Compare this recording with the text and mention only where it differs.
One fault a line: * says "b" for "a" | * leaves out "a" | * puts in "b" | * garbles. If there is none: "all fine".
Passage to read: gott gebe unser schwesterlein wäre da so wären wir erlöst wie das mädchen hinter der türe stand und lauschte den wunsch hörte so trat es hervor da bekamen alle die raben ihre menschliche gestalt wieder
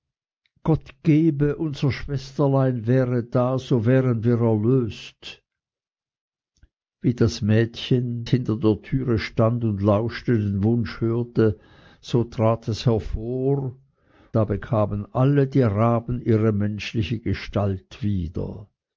all fine